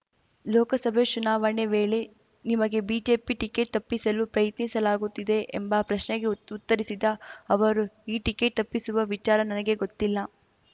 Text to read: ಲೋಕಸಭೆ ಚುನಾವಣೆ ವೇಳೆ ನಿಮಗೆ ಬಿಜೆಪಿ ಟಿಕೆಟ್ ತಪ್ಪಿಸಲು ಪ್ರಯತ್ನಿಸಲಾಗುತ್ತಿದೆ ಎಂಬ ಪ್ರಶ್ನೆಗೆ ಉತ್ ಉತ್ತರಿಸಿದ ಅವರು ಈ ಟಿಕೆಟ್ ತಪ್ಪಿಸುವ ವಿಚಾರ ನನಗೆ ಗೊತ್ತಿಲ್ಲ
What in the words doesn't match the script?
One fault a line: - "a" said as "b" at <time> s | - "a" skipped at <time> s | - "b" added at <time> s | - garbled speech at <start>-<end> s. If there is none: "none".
none